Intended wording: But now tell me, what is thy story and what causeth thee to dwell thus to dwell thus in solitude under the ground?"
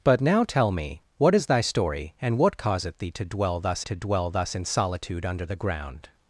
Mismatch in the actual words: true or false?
false